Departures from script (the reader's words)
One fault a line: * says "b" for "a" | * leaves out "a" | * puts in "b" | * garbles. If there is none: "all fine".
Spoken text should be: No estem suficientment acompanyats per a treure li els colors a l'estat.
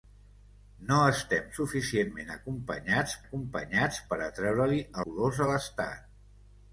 * puts in "acompanyats"
* leaves out "els"